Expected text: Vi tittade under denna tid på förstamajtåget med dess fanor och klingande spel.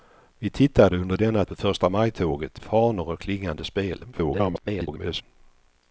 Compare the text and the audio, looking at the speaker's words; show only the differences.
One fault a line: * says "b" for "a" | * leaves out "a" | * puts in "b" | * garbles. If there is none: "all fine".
* leaves out "tid"
* leaves out "med dess"
* garbles